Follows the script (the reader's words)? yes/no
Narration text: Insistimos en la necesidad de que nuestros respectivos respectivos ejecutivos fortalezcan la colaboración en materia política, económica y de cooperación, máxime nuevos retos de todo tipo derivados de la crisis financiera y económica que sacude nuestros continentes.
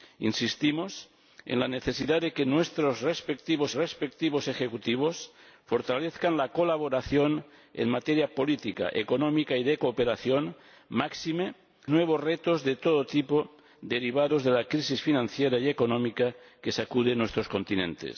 yes